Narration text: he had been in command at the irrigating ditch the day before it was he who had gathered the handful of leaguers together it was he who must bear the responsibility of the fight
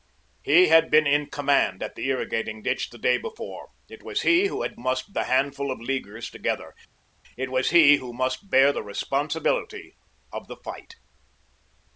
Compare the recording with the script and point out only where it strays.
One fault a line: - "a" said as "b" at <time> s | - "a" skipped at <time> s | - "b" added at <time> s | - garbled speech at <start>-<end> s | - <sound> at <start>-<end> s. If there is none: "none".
- "gathered" said as "must" at 4.8 s